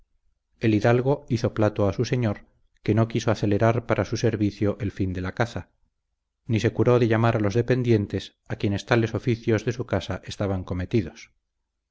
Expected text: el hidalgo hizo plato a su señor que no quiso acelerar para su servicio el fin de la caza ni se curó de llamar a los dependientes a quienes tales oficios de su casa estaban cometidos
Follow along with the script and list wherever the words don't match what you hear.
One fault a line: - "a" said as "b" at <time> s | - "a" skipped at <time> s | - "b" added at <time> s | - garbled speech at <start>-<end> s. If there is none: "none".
none